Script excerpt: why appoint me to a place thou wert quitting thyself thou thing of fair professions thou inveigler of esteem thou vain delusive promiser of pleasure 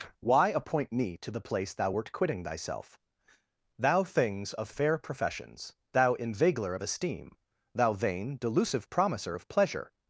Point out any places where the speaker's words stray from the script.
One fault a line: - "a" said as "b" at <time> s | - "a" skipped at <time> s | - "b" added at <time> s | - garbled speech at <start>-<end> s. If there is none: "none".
- "a" said as "the" at 1.3 s
- "thing" said as "things" at 4.0 s